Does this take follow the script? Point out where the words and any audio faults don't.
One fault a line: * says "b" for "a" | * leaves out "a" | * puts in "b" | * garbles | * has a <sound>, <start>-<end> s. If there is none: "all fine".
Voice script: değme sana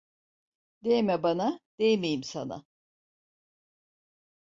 * puts in "bana değmeyim"